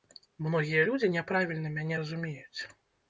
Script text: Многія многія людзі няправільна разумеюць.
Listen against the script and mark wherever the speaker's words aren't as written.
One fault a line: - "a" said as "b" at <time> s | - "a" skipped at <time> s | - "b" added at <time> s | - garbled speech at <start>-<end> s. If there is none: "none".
- "многія" skipped at 0.8 s
- "мяне" added at 1.8 s